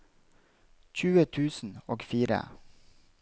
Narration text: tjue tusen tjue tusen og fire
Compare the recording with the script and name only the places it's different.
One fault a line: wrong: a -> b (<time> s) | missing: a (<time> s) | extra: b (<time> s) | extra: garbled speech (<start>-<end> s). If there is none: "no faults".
missing: tjue tusen (1.8 s)